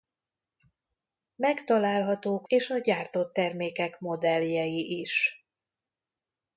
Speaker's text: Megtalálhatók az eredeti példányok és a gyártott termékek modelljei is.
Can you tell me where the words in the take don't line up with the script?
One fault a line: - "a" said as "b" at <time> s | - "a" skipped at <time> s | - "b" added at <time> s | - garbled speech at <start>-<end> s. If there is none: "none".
- "az eredeti példányok" skipped at 2.5 s